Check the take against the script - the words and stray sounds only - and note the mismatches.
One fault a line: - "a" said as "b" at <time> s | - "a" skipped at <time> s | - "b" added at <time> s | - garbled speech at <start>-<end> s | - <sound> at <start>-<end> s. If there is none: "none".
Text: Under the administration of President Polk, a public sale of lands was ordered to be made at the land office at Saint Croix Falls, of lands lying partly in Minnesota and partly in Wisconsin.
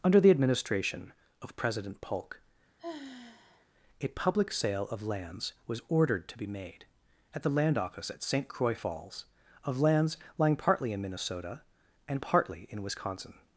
- sigh at 2.8-3.7 s